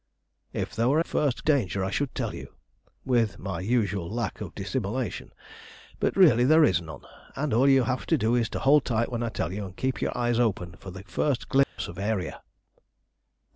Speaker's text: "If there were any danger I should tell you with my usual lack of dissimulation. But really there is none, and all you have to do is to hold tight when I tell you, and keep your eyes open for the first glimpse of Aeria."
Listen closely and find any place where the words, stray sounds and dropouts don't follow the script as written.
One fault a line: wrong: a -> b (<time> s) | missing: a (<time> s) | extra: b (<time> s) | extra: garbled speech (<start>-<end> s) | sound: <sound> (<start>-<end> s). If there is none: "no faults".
wrong: any -> first (1.0 s)
sound: dropout (11.6-11.8 s)